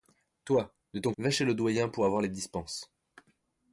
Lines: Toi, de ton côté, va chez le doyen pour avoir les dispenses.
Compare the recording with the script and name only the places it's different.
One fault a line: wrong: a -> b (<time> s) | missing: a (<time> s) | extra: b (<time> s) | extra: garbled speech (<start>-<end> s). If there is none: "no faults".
missing: côté (1.1 s)